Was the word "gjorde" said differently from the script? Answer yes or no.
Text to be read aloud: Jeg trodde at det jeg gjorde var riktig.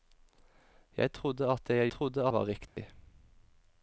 yes